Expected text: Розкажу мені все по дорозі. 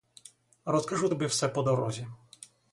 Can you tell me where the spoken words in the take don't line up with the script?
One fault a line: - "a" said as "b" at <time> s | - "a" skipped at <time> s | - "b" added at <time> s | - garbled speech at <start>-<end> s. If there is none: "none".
- "мені" said as "тобі" at 1.0 s